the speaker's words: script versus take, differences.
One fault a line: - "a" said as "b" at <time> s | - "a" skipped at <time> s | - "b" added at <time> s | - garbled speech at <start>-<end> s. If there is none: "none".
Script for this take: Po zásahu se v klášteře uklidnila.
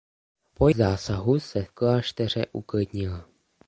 none